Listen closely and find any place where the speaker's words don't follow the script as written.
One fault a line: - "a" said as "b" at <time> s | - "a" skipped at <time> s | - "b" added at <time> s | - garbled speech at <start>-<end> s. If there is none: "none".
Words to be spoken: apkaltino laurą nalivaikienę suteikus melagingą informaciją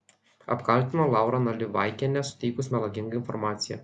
none